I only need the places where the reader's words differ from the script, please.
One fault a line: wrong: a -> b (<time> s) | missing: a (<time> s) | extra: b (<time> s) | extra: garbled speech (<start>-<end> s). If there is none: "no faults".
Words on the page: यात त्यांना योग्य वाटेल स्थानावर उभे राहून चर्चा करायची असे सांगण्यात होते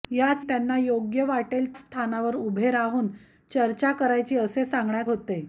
no faults